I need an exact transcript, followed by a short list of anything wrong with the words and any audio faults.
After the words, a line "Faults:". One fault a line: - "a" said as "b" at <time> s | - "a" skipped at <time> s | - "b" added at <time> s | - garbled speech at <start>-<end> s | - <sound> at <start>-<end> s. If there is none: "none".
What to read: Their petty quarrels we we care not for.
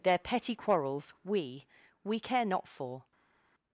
Their petty quarrels we we care not for.
Faults:
none